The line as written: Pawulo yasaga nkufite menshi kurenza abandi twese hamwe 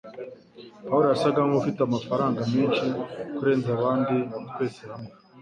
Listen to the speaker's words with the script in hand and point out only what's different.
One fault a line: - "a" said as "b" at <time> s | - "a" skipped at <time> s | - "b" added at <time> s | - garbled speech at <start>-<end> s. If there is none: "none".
- "amafaranga" added at 1.8 s